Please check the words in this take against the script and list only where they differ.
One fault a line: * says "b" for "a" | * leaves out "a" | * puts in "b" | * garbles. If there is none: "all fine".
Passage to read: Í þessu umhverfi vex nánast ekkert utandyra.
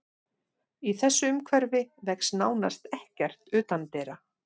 all fine